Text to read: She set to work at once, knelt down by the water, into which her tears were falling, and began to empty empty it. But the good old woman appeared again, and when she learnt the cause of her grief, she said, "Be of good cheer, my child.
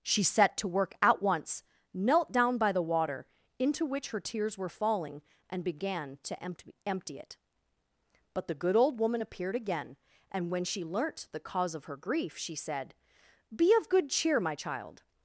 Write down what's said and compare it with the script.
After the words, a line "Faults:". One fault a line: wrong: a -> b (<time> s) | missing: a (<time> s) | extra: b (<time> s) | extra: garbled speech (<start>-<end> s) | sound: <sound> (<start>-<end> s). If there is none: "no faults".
She set to work at once, knelt down by the water, into which her tears were falling, and began to empty empty it. But the good old woman appeared again, and when she learnt the cause of her grief, she said, "Be of good cheer, my child.
Faults:
no faults